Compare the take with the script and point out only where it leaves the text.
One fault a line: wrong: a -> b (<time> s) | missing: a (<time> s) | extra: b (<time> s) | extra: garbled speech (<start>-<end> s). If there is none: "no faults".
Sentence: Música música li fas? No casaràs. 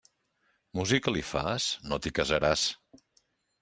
missing: música (1.1 s)
extra: t'hi (2.0 s)